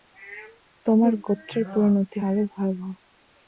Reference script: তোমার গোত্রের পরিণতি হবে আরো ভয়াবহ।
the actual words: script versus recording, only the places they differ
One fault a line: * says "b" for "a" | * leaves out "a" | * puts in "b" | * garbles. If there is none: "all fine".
* leaves out "হবে"